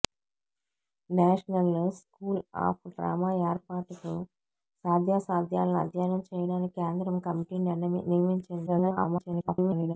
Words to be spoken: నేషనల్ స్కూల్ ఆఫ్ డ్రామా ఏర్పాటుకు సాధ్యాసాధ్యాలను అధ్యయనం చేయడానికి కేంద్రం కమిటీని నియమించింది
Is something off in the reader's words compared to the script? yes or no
yes